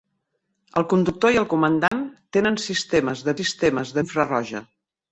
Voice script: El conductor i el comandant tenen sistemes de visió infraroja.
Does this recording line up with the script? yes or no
no